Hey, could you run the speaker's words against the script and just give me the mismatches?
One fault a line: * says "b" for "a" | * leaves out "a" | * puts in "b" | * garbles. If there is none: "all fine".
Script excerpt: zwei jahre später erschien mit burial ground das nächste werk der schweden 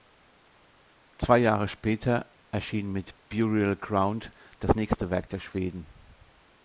all fine